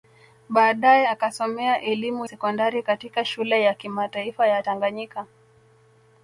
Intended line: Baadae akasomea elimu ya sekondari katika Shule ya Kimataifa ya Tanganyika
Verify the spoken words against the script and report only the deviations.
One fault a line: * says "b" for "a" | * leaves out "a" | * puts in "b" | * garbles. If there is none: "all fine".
* leaves out "ya"